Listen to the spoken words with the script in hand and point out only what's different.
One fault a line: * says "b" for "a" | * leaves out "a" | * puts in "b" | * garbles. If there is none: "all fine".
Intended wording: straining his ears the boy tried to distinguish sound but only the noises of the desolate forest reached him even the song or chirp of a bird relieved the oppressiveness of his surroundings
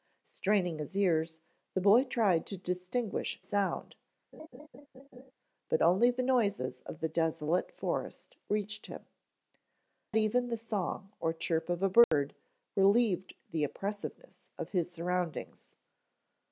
all fine